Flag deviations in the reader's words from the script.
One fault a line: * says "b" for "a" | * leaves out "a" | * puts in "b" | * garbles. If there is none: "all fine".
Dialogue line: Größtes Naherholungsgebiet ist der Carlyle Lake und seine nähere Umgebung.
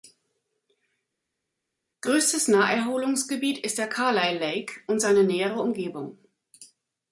all fine